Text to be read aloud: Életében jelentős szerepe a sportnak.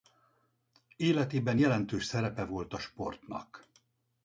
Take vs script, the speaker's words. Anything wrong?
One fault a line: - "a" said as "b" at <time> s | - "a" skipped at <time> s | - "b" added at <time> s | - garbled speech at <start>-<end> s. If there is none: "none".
- "volt" added at 2.4 s